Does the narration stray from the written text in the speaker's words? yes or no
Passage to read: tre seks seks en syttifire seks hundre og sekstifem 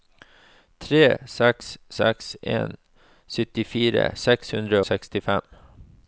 yes